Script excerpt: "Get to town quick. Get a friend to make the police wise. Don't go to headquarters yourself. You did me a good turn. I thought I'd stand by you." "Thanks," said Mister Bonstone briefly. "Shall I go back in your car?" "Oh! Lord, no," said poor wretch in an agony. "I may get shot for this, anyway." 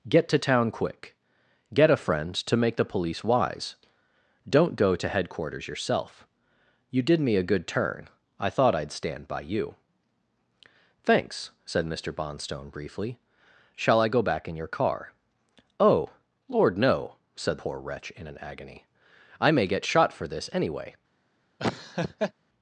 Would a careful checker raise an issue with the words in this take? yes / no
no